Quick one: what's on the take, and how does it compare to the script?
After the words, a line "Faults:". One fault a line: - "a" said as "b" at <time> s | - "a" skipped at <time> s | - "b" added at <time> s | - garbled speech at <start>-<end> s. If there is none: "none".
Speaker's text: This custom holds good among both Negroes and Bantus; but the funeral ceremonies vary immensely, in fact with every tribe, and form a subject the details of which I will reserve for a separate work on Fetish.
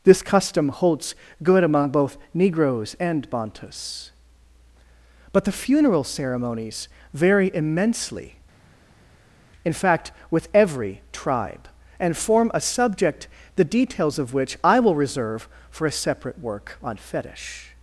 This custom holds good among both Negroes and Bantus; but the funeral ceremonies vary immensely, in fact with every tribe, and form a subject the details of which I will reserve for a separate work on Fetish.
Faults:
none